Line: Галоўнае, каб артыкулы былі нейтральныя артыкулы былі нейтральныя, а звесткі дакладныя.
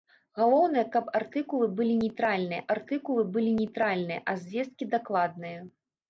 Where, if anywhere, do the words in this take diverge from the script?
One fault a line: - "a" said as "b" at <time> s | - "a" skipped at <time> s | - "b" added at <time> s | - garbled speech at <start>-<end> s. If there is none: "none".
none